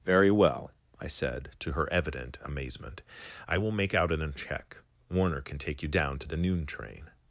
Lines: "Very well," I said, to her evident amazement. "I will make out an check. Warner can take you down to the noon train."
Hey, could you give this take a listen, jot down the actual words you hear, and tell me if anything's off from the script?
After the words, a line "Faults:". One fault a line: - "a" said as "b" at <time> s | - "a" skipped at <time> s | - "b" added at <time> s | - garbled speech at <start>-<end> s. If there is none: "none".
"Very well," I said, to her evident amazement. "I will make out an check. Warner can take you down to the noon train."
Faults:
none